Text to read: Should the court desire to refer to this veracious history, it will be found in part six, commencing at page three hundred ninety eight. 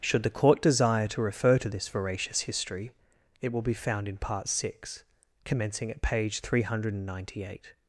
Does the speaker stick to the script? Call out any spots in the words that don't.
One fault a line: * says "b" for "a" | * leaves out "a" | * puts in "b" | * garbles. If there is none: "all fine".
all fine